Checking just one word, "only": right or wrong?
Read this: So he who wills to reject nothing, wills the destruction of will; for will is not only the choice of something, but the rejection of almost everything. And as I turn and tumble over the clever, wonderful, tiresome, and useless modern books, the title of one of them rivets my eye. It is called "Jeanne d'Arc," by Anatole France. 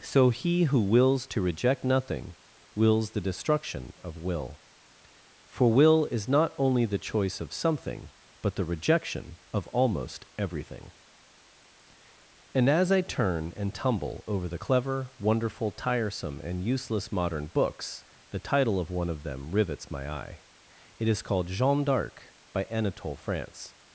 right